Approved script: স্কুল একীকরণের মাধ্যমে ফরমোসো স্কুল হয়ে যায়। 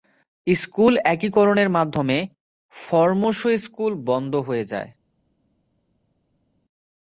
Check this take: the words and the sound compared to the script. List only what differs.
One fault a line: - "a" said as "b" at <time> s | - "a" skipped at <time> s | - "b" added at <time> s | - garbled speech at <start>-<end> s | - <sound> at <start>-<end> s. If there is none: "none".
- "বন্ধ" added at 4.1 s